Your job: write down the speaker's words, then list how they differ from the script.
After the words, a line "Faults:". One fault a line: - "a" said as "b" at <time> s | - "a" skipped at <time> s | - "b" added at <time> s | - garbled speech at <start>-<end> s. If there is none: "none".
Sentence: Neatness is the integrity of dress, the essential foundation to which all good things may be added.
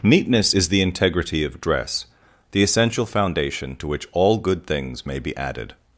Neatness is the integrity of dress, the essential foundation to which all good things may be added.
Faults:
none